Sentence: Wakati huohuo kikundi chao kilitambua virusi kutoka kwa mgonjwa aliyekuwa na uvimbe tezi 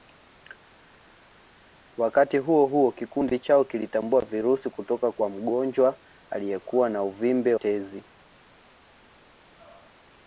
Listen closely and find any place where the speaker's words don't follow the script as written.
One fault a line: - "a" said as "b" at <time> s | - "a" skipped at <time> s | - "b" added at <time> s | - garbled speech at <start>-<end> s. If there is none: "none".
none